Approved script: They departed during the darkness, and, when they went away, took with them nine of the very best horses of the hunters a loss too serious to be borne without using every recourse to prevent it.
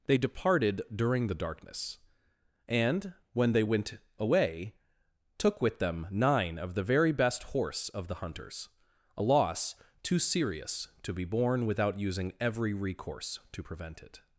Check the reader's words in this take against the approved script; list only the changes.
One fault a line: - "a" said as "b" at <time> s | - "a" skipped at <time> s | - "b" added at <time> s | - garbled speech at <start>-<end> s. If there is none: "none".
- "horses" said as "horse" at 7.4 s